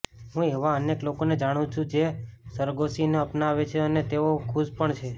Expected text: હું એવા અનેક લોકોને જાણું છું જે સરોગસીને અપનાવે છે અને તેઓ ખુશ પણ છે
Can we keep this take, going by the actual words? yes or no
yes